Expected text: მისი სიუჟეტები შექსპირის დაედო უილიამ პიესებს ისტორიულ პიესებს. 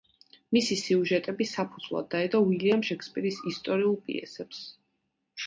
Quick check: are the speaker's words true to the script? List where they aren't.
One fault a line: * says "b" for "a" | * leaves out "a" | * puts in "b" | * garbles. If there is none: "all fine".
* says "საფუძვლად" for "შექსპირის"
* says "შექსპირის" for "პიესებს"